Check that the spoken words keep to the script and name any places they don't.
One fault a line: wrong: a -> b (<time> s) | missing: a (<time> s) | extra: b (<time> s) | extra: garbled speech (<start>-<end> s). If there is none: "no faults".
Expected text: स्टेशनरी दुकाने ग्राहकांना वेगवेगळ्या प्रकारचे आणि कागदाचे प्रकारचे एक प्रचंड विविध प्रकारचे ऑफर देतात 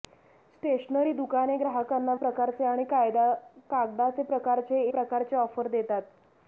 missing: वेगवेगळ्या (2.1 s)
missing: एक प्रचंड विविध (4.8 s)